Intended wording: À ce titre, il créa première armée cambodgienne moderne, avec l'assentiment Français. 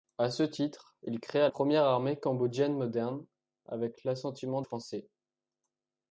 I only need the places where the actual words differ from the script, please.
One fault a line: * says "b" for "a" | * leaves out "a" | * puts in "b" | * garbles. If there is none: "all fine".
all fine